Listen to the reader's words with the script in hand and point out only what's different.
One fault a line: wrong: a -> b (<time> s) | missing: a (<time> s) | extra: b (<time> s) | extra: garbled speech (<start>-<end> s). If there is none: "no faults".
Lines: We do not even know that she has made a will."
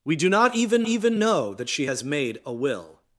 extra: even (0.9 s)